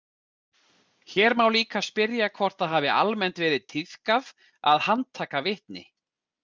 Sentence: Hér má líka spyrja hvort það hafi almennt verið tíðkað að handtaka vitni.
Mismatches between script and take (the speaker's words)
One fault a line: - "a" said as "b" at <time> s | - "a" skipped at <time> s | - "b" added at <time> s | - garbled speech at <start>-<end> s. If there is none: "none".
none